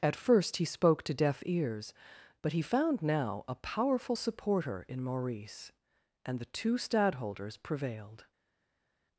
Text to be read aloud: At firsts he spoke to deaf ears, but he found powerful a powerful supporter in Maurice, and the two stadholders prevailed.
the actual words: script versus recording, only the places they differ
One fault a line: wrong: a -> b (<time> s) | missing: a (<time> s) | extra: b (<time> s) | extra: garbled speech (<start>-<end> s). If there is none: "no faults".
wrong: firsts -> first (0.1 s)
wrong: powerful -> now (3.0 s)